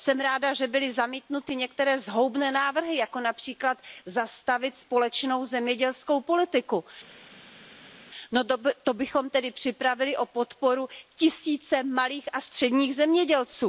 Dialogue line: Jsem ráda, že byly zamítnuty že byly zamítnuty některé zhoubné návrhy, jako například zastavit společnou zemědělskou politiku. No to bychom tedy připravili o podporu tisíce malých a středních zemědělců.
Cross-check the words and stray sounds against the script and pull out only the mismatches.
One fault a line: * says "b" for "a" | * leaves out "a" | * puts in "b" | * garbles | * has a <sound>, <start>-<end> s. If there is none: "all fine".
* leaves out "že byly zamítnuty"